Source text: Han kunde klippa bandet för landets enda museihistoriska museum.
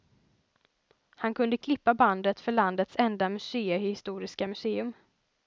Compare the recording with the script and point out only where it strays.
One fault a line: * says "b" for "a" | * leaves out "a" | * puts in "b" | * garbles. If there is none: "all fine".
all fine